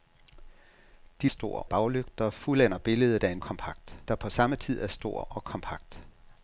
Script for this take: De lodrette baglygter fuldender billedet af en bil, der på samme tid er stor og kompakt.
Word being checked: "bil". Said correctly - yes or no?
no